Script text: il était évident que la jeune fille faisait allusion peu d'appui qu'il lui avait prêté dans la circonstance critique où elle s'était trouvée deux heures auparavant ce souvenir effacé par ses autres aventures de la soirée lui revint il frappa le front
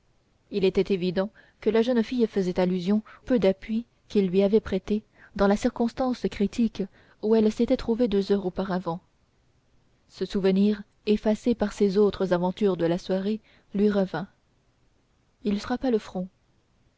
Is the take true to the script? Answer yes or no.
yes